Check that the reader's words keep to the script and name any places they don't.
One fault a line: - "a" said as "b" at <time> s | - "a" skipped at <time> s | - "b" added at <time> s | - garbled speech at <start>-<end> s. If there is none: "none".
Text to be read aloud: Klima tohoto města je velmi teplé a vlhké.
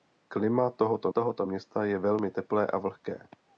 - "tohoto" added at 1.1 s